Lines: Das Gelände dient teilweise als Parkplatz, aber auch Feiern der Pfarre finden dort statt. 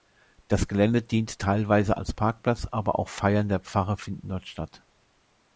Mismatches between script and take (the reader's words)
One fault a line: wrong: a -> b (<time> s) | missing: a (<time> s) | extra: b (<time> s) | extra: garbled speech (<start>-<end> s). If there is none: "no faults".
no faults